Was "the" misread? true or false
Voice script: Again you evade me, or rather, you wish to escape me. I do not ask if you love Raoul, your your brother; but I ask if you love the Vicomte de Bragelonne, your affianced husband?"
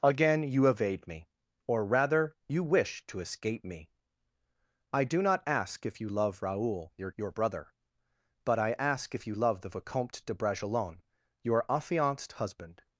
false